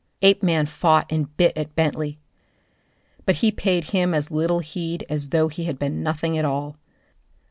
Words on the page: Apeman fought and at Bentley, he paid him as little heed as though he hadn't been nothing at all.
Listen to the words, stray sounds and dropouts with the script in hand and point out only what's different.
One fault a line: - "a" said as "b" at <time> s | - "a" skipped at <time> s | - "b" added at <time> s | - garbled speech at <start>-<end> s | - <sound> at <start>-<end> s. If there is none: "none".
- "bit" added at 1.4 s
- "but" added at 3.3 s
- "hadn't" said as "had" at 5.6 s